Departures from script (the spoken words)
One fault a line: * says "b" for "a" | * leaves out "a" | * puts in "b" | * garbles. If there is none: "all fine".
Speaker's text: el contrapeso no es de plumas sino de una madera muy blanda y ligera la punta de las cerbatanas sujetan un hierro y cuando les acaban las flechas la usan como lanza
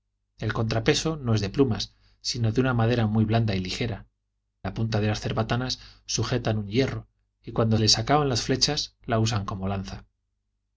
all fine